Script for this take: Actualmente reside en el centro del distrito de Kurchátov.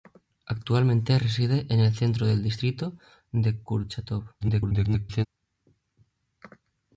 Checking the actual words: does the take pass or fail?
fail